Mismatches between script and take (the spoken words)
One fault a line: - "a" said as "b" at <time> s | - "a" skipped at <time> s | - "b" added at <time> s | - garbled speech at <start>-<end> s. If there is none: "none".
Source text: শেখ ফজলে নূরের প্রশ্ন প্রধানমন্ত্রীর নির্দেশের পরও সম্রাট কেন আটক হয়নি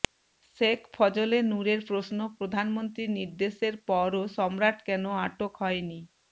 none